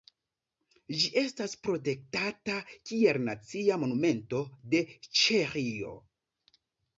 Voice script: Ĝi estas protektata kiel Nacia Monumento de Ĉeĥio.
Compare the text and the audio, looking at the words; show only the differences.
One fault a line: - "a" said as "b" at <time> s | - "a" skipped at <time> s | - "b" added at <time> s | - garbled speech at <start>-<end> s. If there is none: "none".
none